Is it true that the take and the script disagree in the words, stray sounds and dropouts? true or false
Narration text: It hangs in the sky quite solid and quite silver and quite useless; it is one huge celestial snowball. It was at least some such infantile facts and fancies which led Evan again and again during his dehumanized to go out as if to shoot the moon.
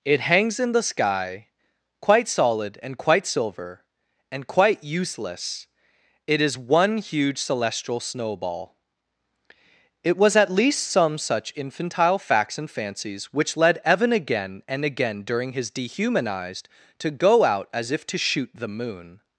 false